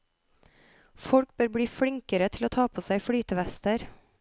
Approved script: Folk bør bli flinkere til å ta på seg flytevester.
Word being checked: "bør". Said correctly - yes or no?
yes